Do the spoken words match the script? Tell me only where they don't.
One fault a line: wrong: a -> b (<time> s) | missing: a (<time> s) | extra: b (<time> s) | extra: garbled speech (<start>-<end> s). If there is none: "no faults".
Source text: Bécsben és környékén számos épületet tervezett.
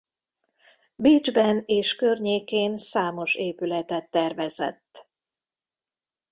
no faults